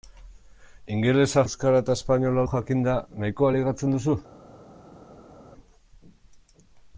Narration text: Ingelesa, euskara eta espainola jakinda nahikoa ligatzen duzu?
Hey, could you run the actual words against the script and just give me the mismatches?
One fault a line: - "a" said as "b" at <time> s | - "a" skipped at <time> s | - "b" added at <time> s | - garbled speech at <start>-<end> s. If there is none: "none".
none